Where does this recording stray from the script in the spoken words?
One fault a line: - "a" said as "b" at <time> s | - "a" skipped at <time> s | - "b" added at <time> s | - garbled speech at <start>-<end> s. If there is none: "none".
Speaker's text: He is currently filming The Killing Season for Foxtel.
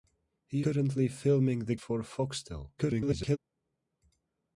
- "is" skipped at 0.6 s
- "Killing Season" skipped at 1.8 s
- garbled speech at 2.8-3.4 s